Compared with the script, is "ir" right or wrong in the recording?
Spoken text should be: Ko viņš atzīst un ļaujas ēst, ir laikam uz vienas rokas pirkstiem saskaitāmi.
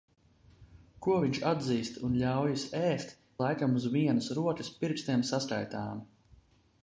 wrong